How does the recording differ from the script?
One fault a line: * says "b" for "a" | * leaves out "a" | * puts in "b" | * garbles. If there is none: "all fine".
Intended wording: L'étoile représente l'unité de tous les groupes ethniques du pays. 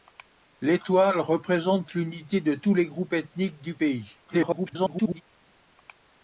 * garbles